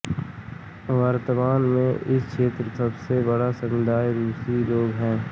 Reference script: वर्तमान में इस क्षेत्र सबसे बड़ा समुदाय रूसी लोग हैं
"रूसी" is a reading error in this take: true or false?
false